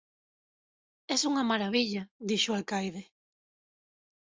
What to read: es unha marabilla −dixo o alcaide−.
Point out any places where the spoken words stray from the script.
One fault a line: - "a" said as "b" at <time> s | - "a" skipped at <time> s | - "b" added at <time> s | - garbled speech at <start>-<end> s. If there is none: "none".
none